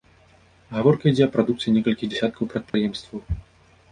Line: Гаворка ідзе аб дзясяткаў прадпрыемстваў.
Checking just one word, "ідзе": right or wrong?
right